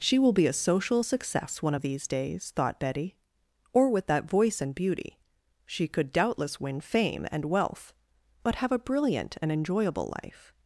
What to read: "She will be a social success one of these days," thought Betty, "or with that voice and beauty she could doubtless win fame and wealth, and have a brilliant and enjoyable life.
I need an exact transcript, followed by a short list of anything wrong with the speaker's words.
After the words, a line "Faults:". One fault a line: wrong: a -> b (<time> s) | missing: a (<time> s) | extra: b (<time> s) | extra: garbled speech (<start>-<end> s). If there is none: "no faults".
"She will be a social success one of these days," thought Betty, "or with that voice and beauty she could doubtless win fame and wealth, but have a brilliant and enjoyable life.
Faults:
wrong: and -> but (8.4 s)